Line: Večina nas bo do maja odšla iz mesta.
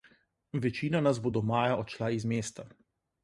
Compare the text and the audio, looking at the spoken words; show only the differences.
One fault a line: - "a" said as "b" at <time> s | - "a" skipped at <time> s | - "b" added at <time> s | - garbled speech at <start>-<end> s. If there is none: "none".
none